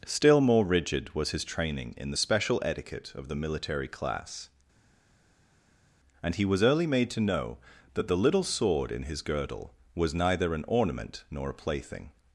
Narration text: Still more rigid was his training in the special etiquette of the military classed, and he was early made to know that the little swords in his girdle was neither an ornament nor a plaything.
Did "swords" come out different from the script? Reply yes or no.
yes